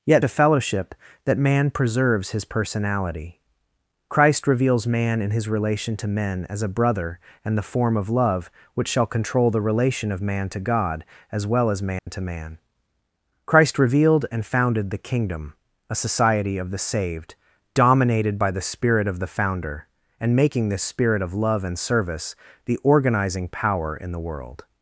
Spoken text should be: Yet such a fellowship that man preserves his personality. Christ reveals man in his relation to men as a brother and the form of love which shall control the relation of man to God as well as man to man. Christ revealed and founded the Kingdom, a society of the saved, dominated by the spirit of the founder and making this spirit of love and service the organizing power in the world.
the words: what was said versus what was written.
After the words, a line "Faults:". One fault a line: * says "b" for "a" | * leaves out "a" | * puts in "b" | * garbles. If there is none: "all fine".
Yet a fellowship that man preserves his personality. Christ reveals man in his relation to men as a brother and the form of love which shall control the relation of man to God as well as man to man. Christ revealed and founded the Kingdom, a society of the saved, dominated by the spirit of the founder and making this spirit of love and service the organizing power in the world.
Faults:
* leaves out "such"